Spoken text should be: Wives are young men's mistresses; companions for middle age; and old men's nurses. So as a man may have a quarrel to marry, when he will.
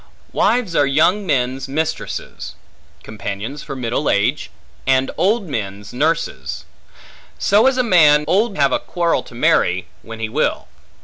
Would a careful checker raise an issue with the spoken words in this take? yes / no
yes